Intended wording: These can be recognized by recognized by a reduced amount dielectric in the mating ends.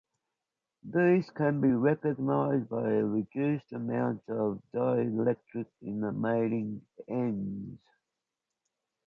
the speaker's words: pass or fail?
fail